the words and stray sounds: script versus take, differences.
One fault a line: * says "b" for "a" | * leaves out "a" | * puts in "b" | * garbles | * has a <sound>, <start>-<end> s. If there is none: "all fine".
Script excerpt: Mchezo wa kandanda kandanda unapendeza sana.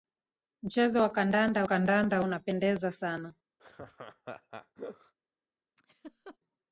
* has a laugh, 3.6-5.1 s
* has a laugh, 5.8-6.4 s